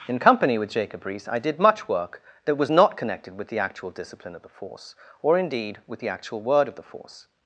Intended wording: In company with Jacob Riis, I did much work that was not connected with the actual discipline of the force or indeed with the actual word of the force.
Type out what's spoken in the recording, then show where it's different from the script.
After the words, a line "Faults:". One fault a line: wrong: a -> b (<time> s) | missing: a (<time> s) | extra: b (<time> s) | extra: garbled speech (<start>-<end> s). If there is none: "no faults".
In company with Jacob Riis, I did much work that was not connected with the actual discipline of the force or indeed with the actual word of the force.
Faults:
no faults